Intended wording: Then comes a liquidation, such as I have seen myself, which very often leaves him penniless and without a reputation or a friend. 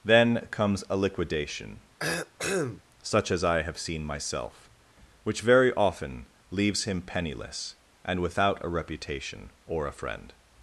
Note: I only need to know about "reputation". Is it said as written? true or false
true